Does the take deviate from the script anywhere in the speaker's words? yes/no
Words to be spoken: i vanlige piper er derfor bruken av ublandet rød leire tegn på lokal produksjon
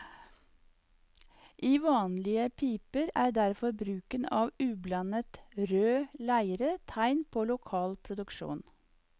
no